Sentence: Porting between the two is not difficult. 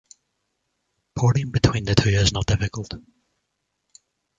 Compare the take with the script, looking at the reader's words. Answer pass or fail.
pass